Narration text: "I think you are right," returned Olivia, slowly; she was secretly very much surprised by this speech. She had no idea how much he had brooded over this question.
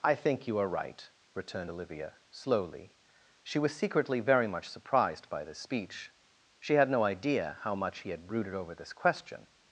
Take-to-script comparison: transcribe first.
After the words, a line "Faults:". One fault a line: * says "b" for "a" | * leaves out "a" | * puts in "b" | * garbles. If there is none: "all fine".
"I think you are right," returned Olivia, slowly; she was secretly very much surprised by this speech. She had no idea how much he had brooded over this question.
Faults:
all fine